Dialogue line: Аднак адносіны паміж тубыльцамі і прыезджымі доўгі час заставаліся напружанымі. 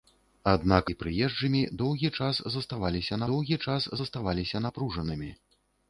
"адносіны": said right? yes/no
no